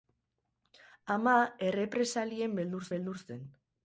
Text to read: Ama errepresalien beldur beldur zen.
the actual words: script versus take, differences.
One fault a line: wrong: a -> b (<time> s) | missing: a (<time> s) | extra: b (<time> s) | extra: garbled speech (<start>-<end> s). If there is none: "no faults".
no faults